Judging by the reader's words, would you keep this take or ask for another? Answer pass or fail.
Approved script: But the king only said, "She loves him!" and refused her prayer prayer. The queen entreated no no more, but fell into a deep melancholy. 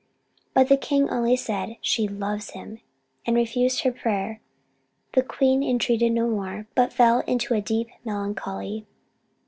fail